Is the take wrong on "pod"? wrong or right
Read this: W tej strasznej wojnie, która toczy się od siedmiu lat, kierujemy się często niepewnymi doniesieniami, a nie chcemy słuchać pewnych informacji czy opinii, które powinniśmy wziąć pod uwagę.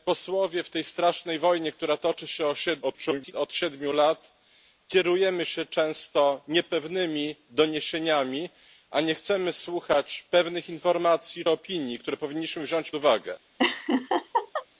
wrong